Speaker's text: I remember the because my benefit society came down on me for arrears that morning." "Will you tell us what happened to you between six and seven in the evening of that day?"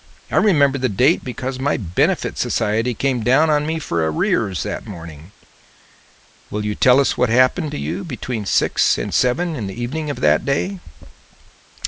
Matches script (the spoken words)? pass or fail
fail